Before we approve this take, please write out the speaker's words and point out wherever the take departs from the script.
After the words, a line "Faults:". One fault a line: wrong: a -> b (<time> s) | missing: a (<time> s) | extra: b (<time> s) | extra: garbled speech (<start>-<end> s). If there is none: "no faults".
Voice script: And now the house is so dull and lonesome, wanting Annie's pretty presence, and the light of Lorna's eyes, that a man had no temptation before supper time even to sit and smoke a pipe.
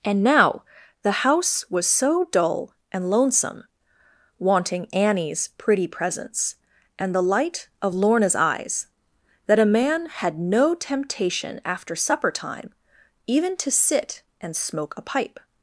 And now the house was so dull and lonesome, wanting Annie's pretty presence, and the light of Lorna's eyes, that a man had no temptation after supper time even to sit and smoke a pipe.
Faults:
wrong: is -> was (1.7 s)
wrong: before -> after (11.6 s)